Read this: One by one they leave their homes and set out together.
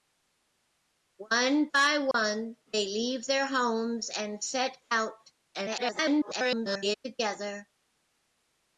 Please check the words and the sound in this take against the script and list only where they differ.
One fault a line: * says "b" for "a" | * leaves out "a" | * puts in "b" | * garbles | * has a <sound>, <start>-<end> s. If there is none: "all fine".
* has a dropout, 2.1-2.1 s
* garbles